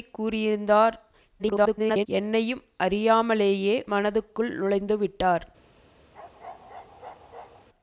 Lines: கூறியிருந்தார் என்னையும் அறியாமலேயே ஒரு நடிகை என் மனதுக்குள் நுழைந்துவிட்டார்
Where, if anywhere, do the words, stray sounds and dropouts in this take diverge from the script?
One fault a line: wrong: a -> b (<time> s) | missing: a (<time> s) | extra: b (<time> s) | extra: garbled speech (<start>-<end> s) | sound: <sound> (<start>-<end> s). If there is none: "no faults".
extra: garbled speech (1.4-2.1 s)
missing: ஒரு நடிகை என் (3.8 s)
sound: bark (6.1-7.7 s)